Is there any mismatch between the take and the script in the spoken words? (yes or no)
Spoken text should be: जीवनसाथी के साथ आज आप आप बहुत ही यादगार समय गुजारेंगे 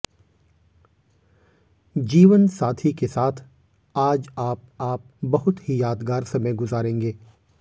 no